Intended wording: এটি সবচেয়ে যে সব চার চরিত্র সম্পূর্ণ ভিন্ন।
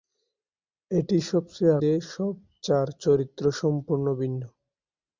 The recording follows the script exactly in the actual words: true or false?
true